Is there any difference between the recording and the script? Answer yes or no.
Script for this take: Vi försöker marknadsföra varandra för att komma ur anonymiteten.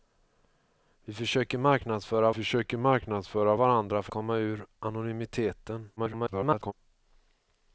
yes